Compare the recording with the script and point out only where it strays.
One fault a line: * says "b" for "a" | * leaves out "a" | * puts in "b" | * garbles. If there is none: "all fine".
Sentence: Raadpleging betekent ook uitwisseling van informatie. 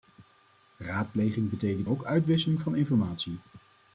all fine